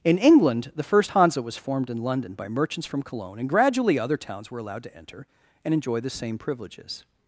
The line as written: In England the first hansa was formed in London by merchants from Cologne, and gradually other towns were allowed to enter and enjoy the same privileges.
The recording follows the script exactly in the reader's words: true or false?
true